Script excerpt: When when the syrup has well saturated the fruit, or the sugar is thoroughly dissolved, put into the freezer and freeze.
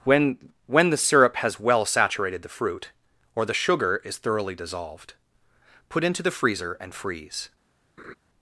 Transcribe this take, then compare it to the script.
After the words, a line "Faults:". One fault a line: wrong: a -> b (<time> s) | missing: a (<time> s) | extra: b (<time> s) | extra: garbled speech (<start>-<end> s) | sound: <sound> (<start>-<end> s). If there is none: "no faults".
When when the syrup has well saturated the fruit, or the sugar is thoroughly dissolved, put into the freezer and freeze.
Faults:
sound: laugh (8.0-8.2 s)